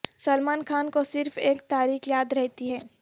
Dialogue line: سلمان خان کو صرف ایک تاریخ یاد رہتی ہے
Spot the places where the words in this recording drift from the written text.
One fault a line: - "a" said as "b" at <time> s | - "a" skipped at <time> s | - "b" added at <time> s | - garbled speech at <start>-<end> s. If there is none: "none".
none